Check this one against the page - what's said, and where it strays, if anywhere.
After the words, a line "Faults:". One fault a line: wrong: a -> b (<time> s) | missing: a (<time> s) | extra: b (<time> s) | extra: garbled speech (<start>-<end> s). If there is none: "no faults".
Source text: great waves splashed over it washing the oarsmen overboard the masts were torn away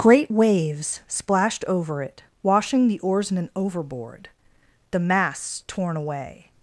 great waves splashed over it washing the oarsmen overboard the masts torn away
Faults:
missing: were (5.6 s)